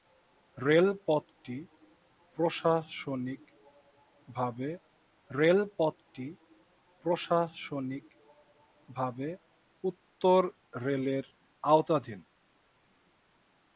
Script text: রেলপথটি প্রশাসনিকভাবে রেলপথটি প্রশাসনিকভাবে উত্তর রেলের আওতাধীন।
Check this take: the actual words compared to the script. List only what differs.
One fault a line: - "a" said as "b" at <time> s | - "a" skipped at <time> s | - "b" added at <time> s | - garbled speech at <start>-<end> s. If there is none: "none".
none